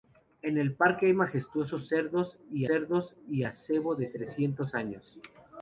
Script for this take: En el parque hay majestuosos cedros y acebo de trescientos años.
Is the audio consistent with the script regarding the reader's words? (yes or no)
no